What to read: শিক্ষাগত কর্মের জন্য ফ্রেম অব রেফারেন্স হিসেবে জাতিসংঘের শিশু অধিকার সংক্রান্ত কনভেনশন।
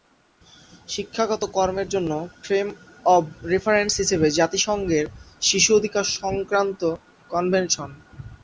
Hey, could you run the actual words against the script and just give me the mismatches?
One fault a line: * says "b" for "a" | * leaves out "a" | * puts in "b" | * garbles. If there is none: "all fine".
all fine